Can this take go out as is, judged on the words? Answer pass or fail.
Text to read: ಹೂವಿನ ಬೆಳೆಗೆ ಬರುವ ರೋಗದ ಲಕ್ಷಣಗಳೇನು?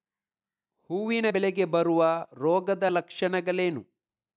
pass